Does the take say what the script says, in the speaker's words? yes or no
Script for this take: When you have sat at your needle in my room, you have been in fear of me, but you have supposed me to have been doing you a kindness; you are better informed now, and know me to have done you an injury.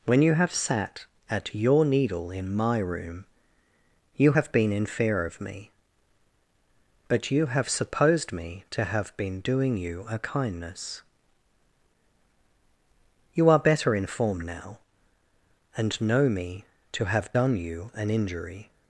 yes